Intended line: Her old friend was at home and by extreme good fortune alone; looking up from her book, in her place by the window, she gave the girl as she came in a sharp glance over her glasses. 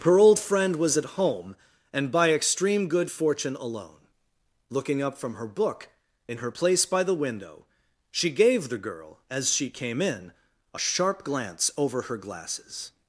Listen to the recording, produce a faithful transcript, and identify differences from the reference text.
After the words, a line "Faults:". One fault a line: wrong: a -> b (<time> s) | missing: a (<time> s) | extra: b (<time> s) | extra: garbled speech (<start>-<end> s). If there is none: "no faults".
Her old friend was at home and by extreme good fortune alone; looking up from her book, in her place by the window, she gave the girl as she came in a sharp glance over her glasses.
Faults:
no faults